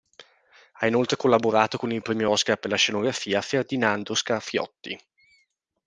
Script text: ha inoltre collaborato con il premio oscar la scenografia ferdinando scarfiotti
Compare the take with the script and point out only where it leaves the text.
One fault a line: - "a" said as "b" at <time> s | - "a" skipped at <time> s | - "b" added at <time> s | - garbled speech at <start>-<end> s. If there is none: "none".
- "per" added at 2.6 s